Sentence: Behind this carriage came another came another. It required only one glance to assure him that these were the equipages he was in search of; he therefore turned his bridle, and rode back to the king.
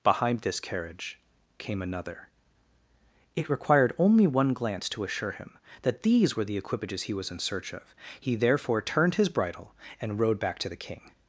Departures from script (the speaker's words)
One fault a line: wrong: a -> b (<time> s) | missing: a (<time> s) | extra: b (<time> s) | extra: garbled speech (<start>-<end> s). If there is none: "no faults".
missing: came another (2.3 s)